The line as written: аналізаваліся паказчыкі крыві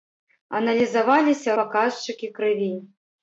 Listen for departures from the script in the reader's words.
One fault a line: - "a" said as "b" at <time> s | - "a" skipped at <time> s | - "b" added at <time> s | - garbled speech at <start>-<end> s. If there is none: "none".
none